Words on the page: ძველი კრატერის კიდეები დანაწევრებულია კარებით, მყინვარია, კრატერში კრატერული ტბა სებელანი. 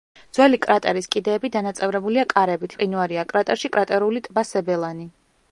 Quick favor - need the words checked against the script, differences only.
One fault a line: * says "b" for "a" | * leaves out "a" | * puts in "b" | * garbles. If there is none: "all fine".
all fine